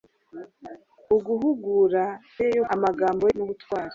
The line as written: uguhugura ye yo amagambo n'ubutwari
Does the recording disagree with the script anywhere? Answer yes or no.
no